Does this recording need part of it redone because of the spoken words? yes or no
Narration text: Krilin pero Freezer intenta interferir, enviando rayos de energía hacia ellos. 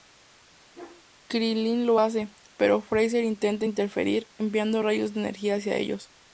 yes